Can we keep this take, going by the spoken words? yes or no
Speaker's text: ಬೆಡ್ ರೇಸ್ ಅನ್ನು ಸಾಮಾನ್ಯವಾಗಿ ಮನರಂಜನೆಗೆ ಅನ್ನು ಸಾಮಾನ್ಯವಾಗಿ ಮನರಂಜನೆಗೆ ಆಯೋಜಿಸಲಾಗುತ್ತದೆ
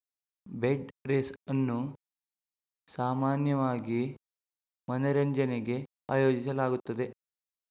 no